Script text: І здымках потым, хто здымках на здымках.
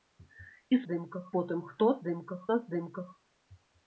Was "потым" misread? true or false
false